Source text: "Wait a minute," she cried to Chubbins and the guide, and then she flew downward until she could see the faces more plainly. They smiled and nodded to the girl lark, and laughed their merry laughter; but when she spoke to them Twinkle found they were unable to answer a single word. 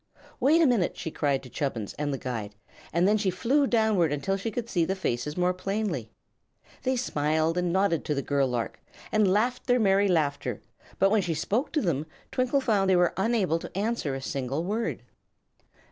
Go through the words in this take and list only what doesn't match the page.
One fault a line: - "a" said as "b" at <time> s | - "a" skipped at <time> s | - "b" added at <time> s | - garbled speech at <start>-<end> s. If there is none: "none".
none